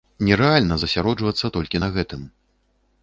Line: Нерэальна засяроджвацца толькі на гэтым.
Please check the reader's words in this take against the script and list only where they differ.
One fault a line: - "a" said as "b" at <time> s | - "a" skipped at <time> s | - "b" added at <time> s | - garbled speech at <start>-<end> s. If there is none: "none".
none